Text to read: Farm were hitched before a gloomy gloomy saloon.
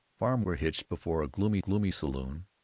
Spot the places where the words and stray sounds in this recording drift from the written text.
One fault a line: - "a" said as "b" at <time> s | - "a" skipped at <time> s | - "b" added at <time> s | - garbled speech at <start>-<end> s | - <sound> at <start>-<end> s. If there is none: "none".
none